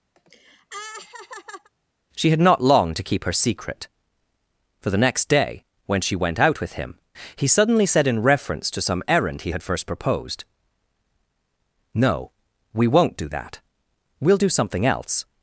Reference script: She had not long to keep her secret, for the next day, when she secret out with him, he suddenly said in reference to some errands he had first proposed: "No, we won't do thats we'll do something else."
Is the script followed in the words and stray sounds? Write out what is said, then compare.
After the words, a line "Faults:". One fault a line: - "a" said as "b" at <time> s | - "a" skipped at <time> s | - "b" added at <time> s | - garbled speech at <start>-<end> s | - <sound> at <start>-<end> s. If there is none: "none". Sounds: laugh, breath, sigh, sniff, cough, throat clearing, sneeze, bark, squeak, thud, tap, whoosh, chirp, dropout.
She had not long to keep her secret, for the next day, when she went out with him, he suddenly said in reference to some errand he had first proposed: "No, we won't do that we'll do something else."
Faults:
- laugh at 0.2-1.7 s
- "secret" said as "went" at 6.2 s
- "errands" said as "errand" at 9.1 s
- "thats" said as "that" at 13.3 s